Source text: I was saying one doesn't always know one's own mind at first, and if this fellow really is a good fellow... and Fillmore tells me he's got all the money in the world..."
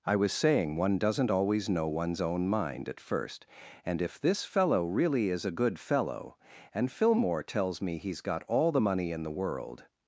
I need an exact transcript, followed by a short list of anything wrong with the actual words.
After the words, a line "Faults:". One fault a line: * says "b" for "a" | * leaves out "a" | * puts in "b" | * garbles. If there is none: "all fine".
I was saying one doesn't always know one's own mind at first, and if this fellow really is a good fellow... and Fillmore tells me he's got all the money in the world..."
Faults:
all fine